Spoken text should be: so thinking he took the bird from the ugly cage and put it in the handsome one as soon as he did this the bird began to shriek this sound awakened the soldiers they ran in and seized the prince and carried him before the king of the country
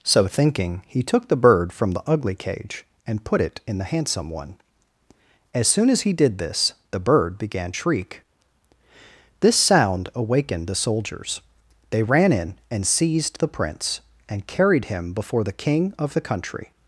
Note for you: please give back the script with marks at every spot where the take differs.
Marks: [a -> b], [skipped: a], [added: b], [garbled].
so thinking he took the bird from the ugly cage and put it in the handsome one as soon as he did this the bird began [skipped: to] shriek this sound awakened the soldiers they ran in and seized the prince and carried him before the king of the country